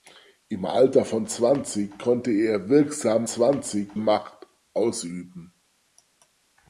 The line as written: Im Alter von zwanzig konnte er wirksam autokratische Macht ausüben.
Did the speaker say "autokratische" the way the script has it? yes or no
no